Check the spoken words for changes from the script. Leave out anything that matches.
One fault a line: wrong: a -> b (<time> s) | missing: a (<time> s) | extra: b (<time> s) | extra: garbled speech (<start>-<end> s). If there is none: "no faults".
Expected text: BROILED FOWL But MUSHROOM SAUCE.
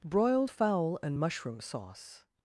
wrong: But -> AND (1.0 s)